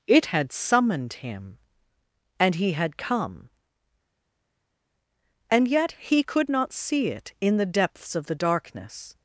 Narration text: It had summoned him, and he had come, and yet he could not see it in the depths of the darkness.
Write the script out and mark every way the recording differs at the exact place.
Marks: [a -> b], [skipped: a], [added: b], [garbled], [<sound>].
It had summoned him, and he had come, and yet he could not see it in the depths of the darkness.